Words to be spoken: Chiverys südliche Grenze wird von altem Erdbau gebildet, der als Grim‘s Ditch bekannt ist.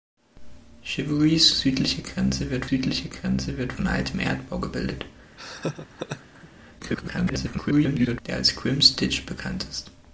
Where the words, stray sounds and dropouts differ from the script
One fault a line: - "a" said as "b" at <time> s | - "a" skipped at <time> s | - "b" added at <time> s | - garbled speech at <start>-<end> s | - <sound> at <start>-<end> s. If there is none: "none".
- "südliche Grenze wird" added at 2.7 s
- laugh at 5.4-6.5 s
- garbled speech at 6.8-8.2 s